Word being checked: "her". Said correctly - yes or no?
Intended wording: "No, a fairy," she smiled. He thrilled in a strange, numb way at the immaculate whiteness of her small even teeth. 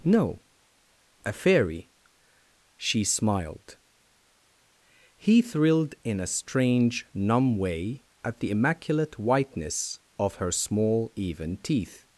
yes